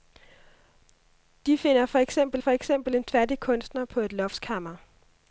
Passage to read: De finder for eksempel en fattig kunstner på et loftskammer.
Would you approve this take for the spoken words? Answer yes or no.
no